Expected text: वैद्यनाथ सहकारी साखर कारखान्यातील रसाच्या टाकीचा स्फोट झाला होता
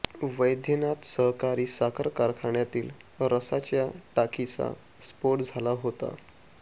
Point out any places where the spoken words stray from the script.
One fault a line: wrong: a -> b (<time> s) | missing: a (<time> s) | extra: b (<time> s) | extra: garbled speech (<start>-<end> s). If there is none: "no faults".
no faults